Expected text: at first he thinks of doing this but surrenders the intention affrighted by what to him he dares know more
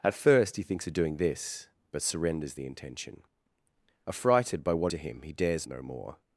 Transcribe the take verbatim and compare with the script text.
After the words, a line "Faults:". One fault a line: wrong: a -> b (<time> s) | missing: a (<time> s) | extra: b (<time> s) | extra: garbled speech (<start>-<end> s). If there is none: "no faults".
at first he thinks of doing this but surrenders the intention affrighted by what to him he dares know more
Faults:
no faults